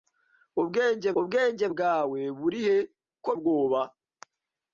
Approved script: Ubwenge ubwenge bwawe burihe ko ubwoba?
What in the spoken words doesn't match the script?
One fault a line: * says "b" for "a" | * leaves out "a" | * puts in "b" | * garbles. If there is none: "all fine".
all fine